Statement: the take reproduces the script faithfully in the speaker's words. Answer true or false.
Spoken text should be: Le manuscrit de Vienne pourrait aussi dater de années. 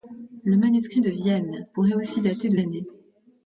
true